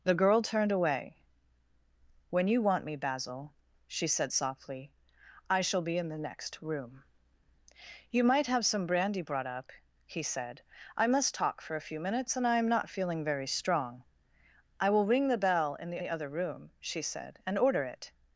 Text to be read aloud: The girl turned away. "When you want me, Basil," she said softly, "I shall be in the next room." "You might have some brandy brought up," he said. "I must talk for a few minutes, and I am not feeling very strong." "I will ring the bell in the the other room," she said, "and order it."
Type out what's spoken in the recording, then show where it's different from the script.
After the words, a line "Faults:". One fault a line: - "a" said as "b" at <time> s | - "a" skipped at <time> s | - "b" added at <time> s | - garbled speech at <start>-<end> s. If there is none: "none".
The girl turned away. "When you want me, Basil," she said softly, "I shall be in the next room." "You might have some brandy brought up," he said. "I must talk for a few minutes, and I am not feeling very strong." "I will ring the bell in the the other room," she said, "and order it."
Faults:
none